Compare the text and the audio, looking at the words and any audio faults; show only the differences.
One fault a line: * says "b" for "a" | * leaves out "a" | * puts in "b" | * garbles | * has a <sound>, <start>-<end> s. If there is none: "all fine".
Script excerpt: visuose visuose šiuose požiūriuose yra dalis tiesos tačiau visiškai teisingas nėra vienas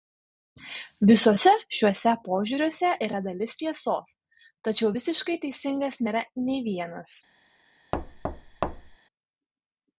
* leaves out "visuose"
* puts in "nei"
* has a thud, 7.9-9.0 s